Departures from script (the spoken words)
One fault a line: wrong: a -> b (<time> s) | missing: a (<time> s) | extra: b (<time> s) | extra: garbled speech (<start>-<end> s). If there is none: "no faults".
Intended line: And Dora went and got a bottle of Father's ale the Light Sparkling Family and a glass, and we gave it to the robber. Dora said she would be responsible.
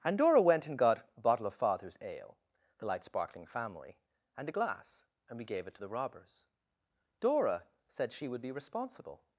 wrong: robber -> robbers (5.9 s)